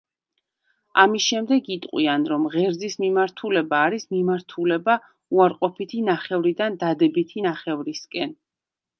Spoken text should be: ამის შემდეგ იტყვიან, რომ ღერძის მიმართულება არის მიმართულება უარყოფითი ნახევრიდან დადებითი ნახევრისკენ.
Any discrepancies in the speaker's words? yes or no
no